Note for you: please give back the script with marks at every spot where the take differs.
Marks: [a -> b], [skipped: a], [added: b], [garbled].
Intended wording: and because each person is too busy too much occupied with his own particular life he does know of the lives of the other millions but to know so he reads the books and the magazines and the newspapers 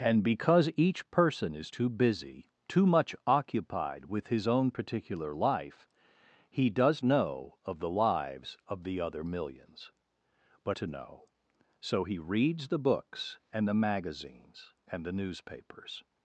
and because each person is too busy too much occupied with his own particular life he does know of the lives of the other millions but to know so he reads the books and the magazines and the newspapers